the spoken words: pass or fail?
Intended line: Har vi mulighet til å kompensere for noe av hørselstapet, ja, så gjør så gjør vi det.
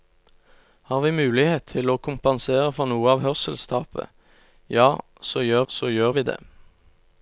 pass